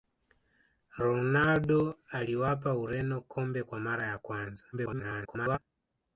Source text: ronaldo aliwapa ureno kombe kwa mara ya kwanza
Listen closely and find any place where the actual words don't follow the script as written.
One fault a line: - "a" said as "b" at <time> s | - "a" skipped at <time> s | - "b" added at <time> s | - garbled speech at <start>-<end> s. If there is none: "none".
- garbled speech at 4.7-5.6 s